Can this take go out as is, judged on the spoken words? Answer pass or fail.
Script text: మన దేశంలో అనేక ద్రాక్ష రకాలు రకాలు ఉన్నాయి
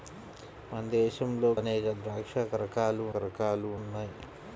pass